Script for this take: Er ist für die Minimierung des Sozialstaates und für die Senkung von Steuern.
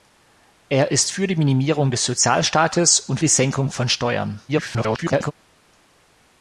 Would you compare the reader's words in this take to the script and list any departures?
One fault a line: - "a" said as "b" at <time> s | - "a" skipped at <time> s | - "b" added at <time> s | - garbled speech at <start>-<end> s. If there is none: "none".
- "für" skipped at 3.2 s
- garbled speech at 4.5-5.3 s